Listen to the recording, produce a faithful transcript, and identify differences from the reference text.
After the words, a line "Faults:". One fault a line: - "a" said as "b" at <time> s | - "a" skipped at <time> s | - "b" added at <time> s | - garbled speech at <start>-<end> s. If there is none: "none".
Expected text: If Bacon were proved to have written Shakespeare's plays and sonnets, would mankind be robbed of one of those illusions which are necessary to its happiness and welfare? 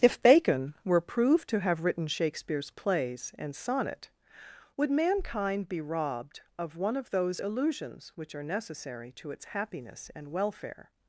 If Bacon were proved to have written Shakespeare's plays and sonnet, would mankind be robbed of one of those illusions which are necessary to its happiness and welfare?
Faults:
- "sonnets" said as "sonnet" at 3.5 s